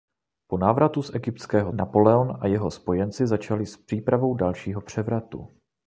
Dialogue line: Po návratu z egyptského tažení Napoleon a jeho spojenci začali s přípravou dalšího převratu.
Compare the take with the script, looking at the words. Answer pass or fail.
fail